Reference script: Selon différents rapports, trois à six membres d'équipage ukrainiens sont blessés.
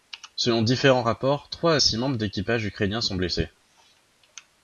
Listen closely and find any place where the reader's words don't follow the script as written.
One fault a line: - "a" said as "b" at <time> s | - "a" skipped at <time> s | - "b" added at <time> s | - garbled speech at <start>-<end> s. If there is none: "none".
none